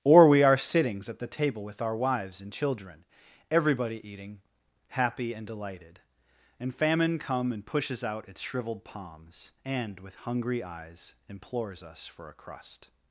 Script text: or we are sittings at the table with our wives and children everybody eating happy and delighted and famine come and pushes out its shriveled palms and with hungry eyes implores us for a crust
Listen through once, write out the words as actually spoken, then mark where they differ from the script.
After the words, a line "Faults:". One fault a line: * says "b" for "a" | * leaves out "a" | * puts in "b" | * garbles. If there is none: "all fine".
or we are sittings at the table with our wives and children everybody eating happy and delighted and famine come and pushes out its shriveled palms and with hungry eyes implores us for a crust
Faults:
all fine